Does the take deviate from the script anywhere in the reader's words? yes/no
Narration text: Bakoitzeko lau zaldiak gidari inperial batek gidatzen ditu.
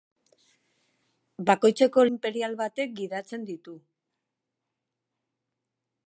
yes